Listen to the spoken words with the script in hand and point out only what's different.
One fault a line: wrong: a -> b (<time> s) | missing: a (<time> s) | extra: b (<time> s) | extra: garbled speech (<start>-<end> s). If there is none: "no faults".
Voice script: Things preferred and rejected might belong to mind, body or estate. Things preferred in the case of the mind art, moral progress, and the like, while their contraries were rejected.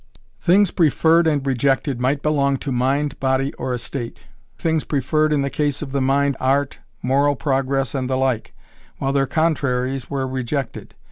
no faults